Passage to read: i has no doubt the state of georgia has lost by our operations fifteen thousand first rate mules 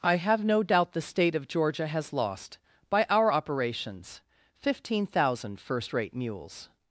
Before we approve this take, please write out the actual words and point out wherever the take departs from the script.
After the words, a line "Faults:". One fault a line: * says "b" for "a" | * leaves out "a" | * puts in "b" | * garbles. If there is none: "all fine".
i have no doubt the state of georgia has lost by our operations fifteen thousand first rate mules
Faults:
* says "have" for "has"